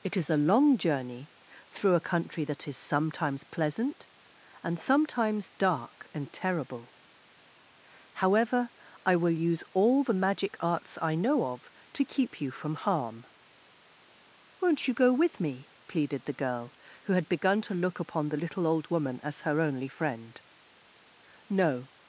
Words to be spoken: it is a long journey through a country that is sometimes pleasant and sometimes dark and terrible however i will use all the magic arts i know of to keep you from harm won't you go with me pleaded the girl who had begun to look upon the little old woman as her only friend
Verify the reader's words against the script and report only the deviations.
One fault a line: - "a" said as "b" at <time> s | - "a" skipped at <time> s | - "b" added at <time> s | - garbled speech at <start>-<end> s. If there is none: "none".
- "no" added at 21.5 s